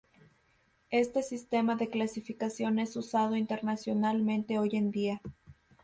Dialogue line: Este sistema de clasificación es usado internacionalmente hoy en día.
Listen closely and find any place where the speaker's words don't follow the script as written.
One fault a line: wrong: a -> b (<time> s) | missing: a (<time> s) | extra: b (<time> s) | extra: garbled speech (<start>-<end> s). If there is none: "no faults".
no faults